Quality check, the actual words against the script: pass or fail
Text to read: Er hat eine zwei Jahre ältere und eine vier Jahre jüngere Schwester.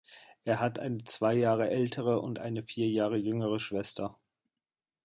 pass